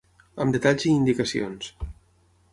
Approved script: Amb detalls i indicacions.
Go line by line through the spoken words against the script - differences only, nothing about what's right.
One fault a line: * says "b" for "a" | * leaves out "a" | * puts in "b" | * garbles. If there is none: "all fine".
all fine